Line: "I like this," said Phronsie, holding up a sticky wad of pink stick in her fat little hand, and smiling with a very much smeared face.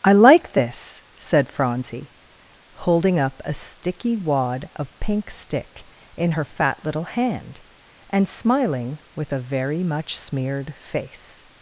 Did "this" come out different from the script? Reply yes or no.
no